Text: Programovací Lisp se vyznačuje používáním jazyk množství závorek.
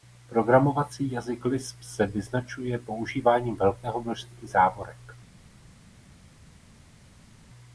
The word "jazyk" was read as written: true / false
false